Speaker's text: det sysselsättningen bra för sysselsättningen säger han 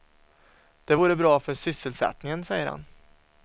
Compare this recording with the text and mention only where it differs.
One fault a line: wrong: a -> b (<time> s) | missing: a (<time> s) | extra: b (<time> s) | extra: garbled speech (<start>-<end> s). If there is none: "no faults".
wrong: sysselsättningen -> vore (0.9 s)